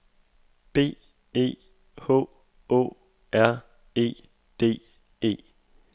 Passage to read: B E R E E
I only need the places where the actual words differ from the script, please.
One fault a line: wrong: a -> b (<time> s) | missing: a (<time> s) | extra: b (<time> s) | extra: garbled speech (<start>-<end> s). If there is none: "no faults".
extra: H Å (1.9 s)
extra: D (4.6 s)